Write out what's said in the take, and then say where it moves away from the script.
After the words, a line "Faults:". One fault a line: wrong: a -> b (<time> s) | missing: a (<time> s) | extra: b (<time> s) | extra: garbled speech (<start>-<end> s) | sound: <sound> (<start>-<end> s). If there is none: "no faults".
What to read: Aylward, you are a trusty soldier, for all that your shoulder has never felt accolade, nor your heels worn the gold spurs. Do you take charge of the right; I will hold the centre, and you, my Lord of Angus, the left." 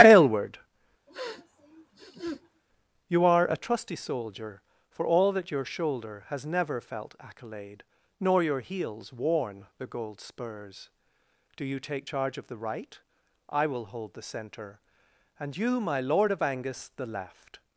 Aylward, you are a trusty soldier, for all that your shoulder has never felt accolade, nor your heels worn the gold spurs. Do you take charge of the right; I will hold the centre, and you, my Lord of Angus, the left."
Faults:
sound: sniff (1.1-2.6 s)